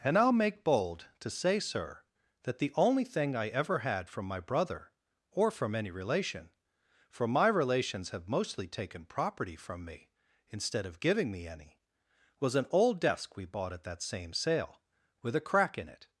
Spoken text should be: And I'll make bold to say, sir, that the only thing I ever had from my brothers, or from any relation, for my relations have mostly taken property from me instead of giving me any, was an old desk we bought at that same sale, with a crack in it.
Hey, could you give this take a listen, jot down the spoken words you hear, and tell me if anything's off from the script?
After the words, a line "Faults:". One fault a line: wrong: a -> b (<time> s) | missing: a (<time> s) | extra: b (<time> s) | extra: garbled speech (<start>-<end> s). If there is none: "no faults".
And I'll make bold to say, sir, that the only thing I ever had from my brother, or from any relation, for my relations have mostly taken property from me instead of giving me any, was an old desk we bought at that same sale, with a crack in it.
Faults:
wrong: brothers -> brother (4.4 s)